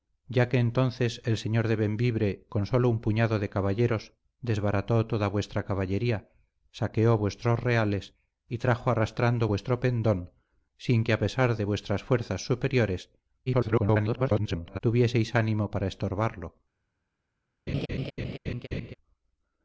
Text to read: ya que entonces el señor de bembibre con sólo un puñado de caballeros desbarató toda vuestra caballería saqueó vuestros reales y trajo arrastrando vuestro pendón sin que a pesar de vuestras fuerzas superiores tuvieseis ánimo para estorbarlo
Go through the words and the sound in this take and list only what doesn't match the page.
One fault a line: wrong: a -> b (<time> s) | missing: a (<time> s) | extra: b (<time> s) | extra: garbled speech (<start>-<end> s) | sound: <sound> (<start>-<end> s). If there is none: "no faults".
extra: garbled speech (13.5-14.8 s)
sound: laugh (17.7-18.9 s)